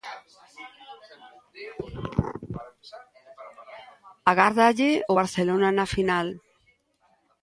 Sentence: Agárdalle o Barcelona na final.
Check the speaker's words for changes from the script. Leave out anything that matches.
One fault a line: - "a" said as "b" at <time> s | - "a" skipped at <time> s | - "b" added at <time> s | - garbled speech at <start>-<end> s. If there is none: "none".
none